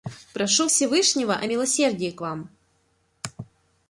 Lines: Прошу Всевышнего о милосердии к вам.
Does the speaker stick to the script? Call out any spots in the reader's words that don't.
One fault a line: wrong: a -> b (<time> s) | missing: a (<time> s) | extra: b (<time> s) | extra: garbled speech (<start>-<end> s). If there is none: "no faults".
no faults